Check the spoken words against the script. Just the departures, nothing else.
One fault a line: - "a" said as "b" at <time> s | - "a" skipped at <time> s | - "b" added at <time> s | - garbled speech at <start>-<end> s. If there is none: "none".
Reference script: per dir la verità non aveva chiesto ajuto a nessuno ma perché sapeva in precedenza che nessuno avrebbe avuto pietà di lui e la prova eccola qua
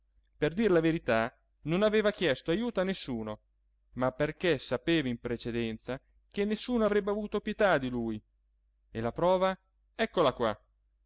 none